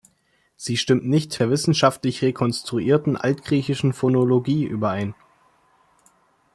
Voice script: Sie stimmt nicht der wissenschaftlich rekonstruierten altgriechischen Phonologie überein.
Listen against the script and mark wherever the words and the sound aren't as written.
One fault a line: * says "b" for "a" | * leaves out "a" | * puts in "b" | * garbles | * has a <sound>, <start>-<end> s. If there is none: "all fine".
all fine